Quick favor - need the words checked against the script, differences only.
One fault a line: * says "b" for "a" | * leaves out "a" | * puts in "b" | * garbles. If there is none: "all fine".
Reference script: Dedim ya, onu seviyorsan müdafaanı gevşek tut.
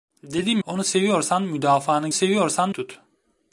* leaves out "ya"
* says "seviyorsan" for "gevşek"